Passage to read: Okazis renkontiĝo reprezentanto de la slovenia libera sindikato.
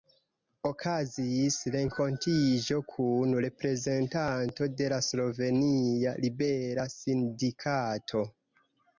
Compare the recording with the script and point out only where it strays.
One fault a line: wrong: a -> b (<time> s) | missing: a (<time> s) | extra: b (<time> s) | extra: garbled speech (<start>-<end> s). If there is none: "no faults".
extra: kun (2.9 s)